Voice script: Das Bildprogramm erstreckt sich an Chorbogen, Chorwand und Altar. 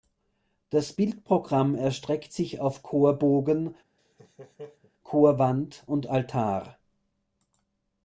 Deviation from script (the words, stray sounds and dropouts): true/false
true